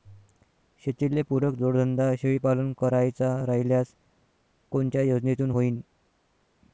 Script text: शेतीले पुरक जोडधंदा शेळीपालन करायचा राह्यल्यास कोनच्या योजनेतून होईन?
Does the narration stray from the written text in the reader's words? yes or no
no